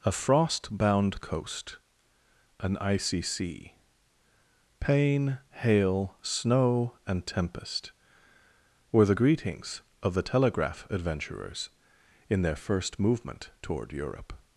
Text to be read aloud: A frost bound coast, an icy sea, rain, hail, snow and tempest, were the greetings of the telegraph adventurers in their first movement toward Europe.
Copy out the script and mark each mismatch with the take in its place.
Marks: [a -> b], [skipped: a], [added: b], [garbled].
A frost bound coast, an icy sea, [rain, -> pain] hail, snow and tempest, were the greetings of the telegraph adventurers in their first movement toward Europe.